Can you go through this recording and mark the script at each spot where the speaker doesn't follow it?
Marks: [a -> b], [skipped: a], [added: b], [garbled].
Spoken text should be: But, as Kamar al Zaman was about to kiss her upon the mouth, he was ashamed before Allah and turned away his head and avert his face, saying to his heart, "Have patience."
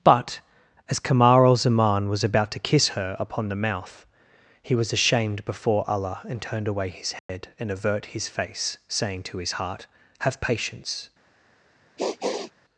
But, as Kamar al Zaman was about to kiss her upon the mouth, he was ashamed before Allah and turned away his head and avert his face, saying to his heart, "Have patience."